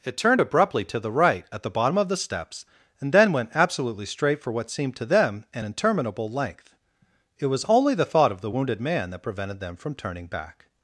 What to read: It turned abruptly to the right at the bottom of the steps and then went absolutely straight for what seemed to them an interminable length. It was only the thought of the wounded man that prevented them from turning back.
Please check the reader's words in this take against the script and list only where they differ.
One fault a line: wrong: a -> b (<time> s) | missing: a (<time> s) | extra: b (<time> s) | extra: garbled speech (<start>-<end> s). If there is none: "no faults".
no faults